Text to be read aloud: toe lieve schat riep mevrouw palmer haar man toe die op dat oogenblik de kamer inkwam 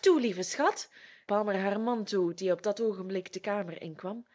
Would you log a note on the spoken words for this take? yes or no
yes